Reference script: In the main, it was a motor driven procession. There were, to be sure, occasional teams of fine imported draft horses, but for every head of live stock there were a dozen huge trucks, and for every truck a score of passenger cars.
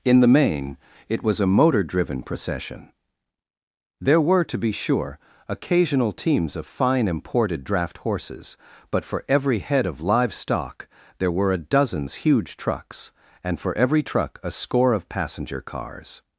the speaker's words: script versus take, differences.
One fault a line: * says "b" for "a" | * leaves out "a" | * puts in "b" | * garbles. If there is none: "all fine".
* says "dozens" for "dozen"